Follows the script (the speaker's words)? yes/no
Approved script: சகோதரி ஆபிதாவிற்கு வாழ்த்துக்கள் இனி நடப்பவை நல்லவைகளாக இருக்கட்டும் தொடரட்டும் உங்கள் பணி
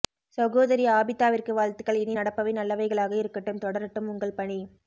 yes